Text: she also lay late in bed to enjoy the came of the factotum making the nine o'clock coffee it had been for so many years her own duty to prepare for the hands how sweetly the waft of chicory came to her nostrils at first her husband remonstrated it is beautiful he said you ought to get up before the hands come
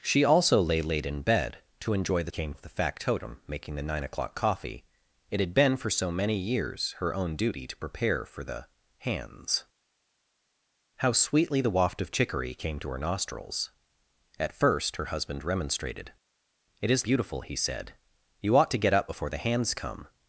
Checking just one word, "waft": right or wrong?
right